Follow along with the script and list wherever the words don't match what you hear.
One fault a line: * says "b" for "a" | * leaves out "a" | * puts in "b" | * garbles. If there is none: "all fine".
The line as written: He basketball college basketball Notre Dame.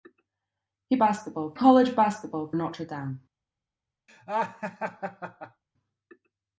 all fine